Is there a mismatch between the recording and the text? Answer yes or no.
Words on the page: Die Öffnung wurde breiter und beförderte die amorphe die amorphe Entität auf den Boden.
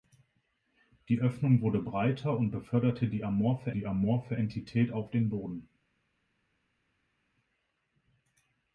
no